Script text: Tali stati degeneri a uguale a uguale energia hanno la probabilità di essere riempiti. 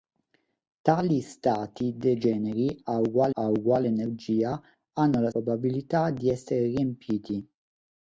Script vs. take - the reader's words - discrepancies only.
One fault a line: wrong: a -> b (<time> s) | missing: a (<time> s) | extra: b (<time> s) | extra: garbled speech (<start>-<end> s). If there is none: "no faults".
no faults